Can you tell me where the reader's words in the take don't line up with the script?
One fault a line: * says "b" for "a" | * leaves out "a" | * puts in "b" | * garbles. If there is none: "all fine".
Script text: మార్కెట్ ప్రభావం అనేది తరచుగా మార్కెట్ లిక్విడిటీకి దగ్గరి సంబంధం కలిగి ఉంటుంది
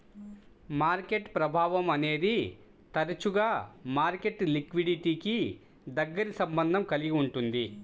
all fine